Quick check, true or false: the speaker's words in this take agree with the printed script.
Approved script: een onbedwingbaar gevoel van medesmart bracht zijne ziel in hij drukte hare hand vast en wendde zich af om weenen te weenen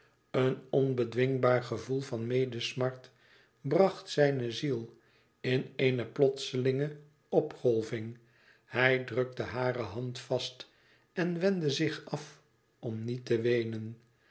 false